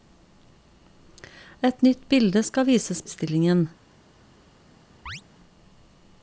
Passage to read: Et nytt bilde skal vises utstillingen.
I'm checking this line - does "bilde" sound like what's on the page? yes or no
yes